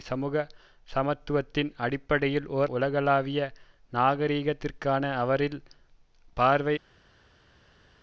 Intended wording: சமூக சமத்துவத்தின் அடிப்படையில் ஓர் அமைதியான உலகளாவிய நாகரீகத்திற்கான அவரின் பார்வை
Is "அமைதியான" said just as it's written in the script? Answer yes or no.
no